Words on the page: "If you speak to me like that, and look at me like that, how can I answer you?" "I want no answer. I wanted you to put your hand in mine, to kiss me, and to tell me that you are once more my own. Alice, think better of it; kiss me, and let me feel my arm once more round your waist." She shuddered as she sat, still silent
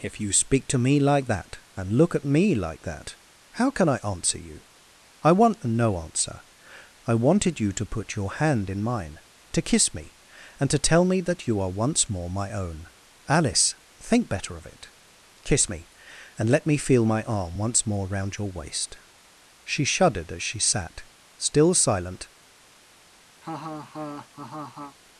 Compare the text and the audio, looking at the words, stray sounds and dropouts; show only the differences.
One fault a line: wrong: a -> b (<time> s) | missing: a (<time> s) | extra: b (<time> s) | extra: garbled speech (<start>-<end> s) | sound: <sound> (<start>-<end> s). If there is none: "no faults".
sound: laugh (23.4-25.0 s)